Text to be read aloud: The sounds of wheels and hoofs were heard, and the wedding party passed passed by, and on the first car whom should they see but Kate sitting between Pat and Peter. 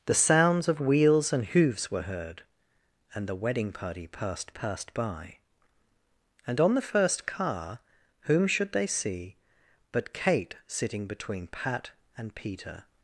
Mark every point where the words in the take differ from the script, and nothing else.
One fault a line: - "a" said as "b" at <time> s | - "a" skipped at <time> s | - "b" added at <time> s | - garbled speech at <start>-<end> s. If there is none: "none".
none